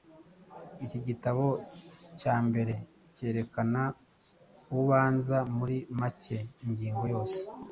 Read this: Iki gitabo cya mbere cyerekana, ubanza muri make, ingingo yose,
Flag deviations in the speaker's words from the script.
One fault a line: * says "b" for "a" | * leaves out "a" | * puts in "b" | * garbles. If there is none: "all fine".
all fine